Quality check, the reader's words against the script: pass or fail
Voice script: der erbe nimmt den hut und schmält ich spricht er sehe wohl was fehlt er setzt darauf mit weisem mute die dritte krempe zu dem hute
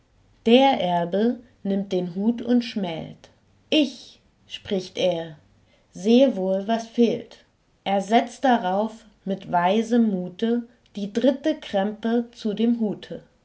pass